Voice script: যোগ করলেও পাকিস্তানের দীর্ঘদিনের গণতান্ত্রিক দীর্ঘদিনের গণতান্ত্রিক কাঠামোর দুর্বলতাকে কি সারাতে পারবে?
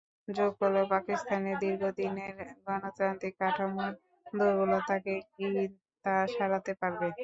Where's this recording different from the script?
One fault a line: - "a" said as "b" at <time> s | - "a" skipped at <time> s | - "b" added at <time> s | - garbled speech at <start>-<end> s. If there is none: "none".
- "দীর্ঘদিনের গণতান্ত্রিক" skipped at 3.3 s
- "তা" added at 6.1 s